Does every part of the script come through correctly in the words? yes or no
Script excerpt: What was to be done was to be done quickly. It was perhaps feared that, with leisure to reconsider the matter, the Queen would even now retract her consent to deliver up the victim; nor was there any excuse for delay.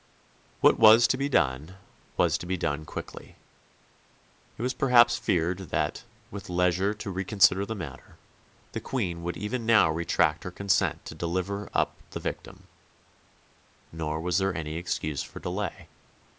yes